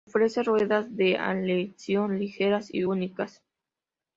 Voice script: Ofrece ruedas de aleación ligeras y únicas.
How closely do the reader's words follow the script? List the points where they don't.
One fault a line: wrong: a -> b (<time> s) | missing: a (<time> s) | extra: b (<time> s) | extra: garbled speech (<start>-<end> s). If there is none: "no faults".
no faults